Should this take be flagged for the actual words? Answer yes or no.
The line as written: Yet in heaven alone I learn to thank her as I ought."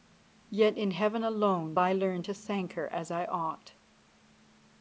no